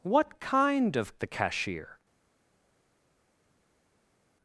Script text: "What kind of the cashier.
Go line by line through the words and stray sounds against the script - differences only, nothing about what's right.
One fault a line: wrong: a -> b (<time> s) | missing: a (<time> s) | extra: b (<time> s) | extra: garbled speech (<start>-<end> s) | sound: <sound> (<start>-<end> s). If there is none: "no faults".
no faults